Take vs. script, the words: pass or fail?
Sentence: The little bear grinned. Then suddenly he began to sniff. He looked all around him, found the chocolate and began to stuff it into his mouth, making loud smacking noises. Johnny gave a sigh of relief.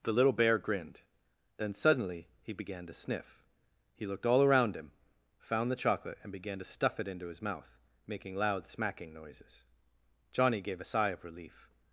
pass